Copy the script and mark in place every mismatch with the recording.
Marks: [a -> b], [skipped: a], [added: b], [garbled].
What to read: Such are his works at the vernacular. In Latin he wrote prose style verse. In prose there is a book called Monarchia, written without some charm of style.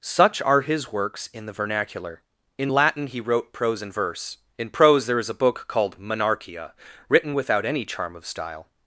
Such are his works [at -> in] the vernacular. In Latin he wrote prose [style -> and] verse. In prose there is a book called Monarchia, written without [some -> any] charm of style.